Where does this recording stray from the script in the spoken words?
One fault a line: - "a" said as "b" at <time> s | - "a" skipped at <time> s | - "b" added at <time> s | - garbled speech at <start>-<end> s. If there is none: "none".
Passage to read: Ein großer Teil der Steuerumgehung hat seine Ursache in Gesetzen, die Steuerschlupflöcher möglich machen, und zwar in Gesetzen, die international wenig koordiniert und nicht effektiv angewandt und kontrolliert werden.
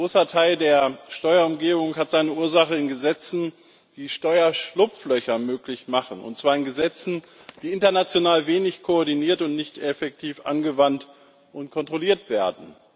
none